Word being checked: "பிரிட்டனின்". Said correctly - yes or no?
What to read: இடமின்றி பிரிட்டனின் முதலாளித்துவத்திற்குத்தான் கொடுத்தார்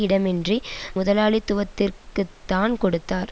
no